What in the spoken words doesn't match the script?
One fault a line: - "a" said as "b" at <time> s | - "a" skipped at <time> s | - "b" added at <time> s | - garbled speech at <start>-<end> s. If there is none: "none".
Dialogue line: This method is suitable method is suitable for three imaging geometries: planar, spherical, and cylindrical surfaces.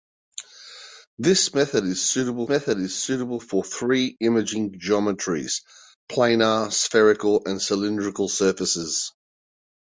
none